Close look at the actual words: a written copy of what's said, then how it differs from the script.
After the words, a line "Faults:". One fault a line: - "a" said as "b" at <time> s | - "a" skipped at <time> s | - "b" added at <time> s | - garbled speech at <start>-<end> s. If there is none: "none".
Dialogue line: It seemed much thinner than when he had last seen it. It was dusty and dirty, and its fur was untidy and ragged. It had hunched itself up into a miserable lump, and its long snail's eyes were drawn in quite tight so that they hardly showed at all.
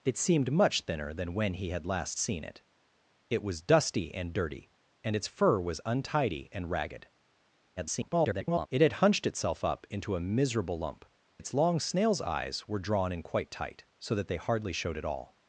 It seemed much thinner than when he had last seen it. It was dusty and dirty, and its fur was untidy and ragged. [garbled] It had hunched itself up into a miserable lump, its long snail's eyes were drawn in quite tight so that they hardly showed at all.
Faults:
- garbled speech at 7.8-8.7 s
- "and" skipped at 11.0 s